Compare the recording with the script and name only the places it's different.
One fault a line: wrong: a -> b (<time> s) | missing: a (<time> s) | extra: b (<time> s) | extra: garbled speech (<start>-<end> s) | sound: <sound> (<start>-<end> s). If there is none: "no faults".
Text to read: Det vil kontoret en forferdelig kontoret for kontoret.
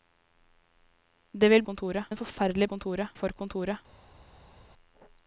no faults